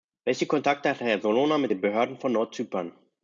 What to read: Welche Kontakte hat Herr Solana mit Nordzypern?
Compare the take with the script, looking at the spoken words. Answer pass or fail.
fail